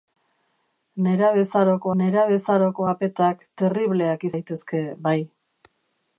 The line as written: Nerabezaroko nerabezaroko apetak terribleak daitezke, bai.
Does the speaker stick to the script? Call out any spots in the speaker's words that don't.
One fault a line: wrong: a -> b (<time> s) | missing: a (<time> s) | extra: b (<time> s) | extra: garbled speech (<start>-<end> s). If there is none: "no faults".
no faults